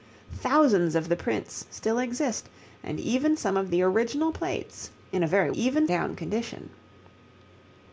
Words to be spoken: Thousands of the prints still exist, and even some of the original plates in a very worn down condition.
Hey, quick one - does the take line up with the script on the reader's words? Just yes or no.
no